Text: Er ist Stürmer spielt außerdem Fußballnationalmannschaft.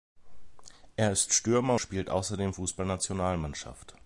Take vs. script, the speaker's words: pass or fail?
pass